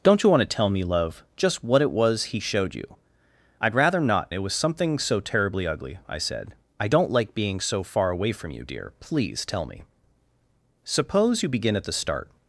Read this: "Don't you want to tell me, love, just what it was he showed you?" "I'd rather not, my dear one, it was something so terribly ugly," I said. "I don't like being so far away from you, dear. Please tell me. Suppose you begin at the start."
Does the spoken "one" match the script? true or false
false